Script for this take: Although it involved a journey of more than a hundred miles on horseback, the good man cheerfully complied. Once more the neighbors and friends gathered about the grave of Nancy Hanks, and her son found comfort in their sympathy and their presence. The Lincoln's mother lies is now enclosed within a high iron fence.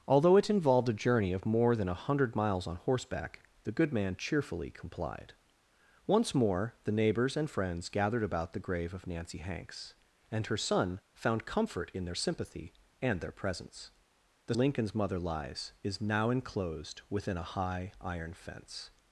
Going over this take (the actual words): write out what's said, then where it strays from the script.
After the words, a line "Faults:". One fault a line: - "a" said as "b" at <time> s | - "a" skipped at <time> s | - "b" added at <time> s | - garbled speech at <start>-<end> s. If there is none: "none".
Although it involved a journey of more than a hundred miles on horseback, the good man cheerfully complied. Once more the neighbors and friends gathered about the grave of Nancy Hanks, and her son found comfort in their sympathy and their presence. The Lincoln's mother lies is now enclosed within a high iron fence.
Faults:
none